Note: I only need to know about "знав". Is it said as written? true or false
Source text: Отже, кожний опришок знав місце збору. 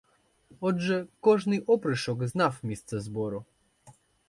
true